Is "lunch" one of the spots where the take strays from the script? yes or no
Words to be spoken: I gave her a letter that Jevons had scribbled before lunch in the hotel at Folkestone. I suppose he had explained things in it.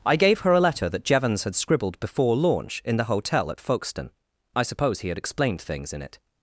yes